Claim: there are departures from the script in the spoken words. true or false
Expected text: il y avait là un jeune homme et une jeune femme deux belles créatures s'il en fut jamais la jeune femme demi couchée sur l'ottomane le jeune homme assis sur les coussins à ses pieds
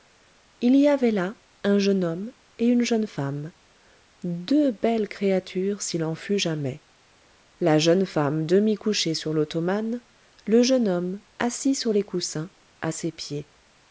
false